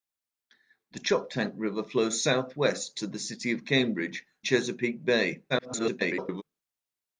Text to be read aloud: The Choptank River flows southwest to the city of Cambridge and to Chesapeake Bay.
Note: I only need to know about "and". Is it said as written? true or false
false